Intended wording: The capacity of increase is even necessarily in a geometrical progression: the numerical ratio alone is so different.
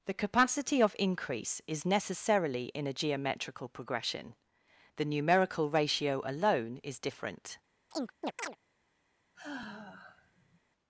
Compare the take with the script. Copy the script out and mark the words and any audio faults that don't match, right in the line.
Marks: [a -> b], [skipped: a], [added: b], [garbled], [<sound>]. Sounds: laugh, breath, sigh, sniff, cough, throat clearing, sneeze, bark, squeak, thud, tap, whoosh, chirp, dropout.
The capacity of increase is [skipped: even] necessarily in a geometrical progression: the numerical ratio alone is [skipped: so] different. [chirp] [sigh]